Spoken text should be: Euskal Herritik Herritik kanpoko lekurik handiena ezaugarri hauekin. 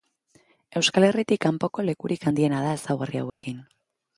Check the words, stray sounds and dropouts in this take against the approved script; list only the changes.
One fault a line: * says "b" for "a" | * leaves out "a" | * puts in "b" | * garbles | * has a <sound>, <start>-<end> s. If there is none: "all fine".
* leaves out "Herritik"
* puts in "da"
* has a dropout, 3.3-3.4 s